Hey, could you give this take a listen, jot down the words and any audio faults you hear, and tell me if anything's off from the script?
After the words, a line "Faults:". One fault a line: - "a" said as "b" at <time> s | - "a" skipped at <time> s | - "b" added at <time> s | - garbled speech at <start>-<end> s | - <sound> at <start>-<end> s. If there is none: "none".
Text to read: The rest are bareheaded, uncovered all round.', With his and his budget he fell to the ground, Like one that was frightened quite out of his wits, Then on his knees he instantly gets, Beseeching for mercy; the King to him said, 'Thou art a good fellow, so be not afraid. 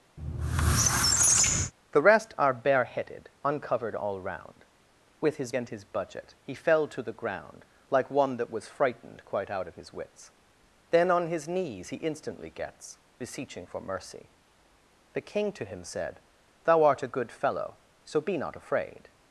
The rest are bareheaded, uncovered all round.', With his and his budget he fell to the ground, Like one that was frightened quite out of his wits, Then on his knees he instantly gets, Beseeching for mercy; the King to him said, 'Thou art a good fellow, so be not afraid.
Faults:
- squeak at 0.2-1.7 s